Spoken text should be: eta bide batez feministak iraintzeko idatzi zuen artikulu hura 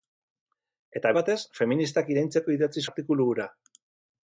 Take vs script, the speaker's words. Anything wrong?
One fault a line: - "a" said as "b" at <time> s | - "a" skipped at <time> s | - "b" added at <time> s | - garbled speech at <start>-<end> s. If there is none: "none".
- "bide" skipped at 1.1 s
- "zuen" skipped at 2.8 s